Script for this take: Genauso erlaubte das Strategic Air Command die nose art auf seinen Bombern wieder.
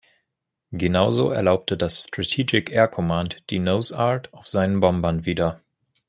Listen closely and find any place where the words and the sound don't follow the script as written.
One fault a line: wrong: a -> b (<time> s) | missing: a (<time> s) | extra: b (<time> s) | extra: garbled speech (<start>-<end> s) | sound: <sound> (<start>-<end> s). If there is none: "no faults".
no faults